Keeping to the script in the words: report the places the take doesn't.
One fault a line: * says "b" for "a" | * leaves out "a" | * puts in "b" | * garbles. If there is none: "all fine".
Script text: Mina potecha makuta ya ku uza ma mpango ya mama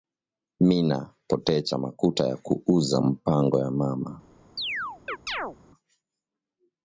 * leaves out "ma"